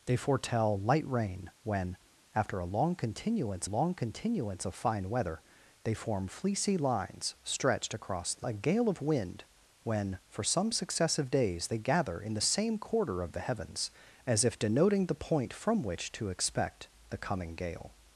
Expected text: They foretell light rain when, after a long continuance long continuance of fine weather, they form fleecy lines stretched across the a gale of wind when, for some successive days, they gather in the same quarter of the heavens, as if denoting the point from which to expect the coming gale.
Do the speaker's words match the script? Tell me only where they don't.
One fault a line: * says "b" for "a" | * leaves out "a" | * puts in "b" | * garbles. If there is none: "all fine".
all fine